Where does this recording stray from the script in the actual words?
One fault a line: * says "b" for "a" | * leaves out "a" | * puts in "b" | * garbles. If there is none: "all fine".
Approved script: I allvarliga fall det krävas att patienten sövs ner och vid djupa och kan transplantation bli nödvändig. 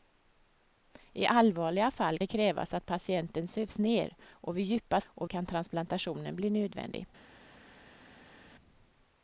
all fine